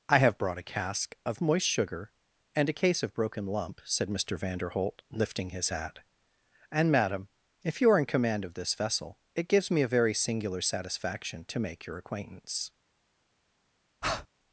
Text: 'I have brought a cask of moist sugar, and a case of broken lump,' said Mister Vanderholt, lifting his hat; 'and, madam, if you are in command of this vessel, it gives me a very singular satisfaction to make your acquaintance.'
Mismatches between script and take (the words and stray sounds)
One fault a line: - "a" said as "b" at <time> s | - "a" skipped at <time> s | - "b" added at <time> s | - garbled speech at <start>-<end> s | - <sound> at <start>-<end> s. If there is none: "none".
- breath at 14.0-14.3 s